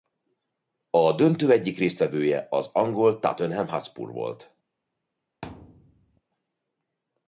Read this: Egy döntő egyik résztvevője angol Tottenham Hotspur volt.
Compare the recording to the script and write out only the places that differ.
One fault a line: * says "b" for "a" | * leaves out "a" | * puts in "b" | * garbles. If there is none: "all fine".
* says "A" for "Egy"
* puts in "az"